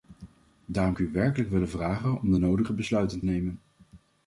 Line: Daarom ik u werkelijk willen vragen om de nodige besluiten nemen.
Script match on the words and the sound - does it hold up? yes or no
yes